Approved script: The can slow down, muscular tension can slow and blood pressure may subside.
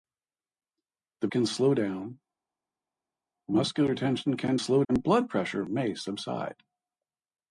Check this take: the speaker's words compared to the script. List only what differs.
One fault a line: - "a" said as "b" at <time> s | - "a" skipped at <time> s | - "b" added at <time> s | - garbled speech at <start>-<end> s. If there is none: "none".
none